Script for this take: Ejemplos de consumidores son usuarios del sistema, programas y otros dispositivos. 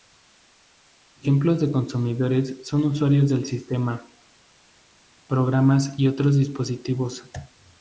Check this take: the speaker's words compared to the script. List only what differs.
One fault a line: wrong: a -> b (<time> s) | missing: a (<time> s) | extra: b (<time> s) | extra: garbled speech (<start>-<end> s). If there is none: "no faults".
no faults